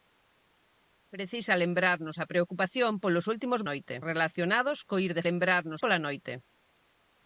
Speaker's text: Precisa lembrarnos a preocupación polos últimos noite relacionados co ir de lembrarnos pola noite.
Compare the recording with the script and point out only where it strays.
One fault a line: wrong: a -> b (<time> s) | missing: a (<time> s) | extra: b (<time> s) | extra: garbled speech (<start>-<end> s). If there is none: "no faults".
no faults